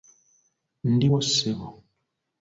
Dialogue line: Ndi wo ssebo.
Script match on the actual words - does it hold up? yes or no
yes